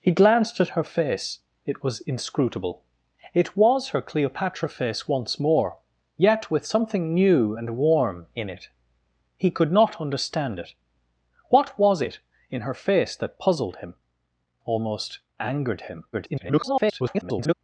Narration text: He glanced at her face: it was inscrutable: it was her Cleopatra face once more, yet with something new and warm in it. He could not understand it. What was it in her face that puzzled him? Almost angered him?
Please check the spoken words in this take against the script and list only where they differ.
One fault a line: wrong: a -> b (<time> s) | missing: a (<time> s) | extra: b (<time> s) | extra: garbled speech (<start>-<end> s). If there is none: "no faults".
extra: garbled speech (16.1-17.5 s)